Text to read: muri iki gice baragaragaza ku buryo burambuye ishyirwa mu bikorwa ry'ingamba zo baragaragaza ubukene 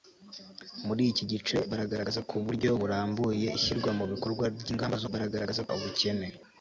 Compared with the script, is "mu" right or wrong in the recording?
right